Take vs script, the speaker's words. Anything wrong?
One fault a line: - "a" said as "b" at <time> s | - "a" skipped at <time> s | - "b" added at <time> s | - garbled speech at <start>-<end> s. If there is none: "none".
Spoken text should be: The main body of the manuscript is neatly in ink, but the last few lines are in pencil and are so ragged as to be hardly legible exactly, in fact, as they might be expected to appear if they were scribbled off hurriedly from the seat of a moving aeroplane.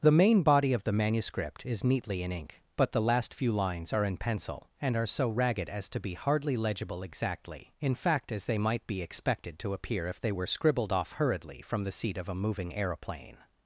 none